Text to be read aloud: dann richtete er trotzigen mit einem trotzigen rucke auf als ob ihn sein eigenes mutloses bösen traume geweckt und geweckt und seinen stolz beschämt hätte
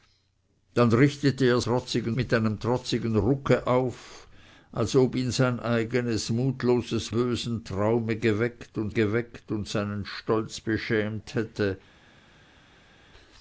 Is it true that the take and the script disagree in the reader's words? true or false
false